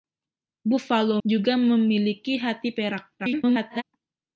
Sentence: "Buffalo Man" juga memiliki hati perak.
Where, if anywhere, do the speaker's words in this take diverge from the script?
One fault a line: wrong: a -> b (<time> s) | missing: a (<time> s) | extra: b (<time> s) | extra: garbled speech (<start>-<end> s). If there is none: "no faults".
missing: Man (1.2 s)
extra: garbled speech (3.2-3.8 s)